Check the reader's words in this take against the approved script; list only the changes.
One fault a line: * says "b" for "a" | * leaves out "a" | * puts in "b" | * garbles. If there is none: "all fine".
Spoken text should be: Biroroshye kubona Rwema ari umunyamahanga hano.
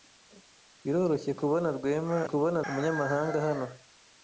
* says "kubona" for "ari"